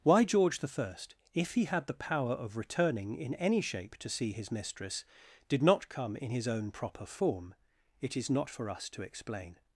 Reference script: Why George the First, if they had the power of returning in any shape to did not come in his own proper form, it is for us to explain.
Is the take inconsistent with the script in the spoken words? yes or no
yes